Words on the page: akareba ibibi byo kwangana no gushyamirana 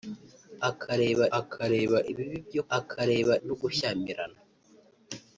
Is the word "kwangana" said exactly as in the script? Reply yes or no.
no